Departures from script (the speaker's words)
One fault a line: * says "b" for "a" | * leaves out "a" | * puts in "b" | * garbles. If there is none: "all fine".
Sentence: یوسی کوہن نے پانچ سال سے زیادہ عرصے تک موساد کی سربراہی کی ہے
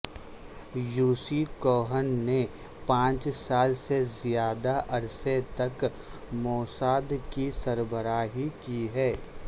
all fine